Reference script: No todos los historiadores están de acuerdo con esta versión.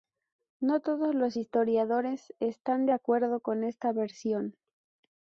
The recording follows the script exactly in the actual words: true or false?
true